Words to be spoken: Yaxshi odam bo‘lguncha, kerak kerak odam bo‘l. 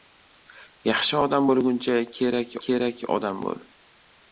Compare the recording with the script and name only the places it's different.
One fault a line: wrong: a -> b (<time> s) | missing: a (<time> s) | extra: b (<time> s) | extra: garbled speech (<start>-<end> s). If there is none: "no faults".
no faults